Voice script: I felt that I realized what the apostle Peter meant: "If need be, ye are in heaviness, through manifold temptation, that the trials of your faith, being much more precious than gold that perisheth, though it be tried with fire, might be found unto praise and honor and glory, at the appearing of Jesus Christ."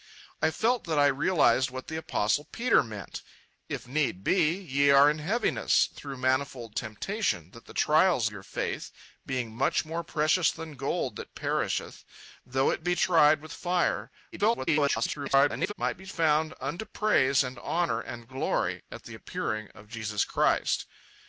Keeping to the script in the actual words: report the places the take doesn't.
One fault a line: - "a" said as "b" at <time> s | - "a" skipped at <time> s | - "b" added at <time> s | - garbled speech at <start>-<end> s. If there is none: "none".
- "of" skipped at 8.3 s
- garbled speech at 14.3-15.7 s